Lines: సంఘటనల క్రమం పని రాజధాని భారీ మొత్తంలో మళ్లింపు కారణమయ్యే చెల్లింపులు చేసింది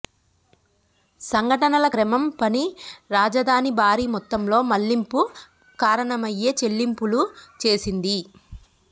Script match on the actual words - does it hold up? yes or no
yes